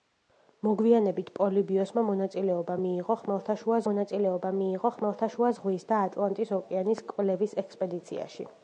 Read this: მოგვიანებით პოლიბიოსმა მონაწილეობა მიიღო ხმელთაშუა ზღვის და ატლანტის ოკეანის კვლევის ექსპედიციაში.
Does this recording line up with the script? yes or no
no